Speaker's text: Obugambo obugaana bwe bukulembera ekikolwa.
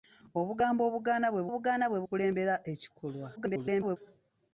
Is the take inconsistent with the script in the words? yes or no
yes